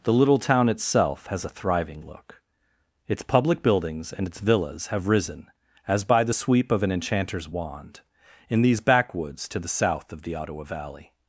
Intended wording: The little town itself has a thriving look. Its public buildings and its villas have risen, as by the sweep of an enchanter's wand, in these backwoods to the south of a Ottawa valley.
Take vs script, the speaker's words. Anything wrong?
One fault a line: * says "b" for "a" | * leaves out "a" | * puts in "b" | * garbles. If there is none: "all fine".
* says "the" for "a"